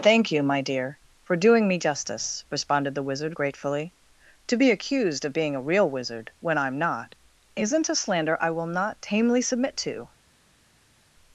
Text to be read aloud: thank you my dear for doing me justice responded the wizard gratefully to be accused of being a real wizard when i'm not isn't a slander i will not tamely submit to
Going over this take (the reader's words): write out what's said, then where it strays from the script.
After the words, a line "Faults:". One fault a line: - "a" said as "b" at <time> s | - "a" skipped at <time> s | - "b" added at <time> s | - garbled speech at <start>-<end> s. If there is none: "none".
thank you my dear for doing me justice responded the wizard gratefully to be accused of being a real wizard when i'm not isn't a slander i will not tamely submit to
Faults:
none